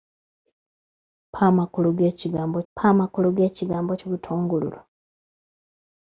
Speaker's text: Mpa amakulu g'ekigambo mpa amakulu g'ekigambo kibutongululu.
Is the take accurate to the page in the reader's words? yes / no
yes